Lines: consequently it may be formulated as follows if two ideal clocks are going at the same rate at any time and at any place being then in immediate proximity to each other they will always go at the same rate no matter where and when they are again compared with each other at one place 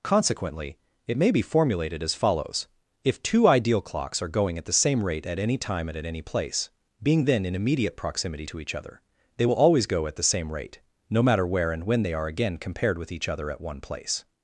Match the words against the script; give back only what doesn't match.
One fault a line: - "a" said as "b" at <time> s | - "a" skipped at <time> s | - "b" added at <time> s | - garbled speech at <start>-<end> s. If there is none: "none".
none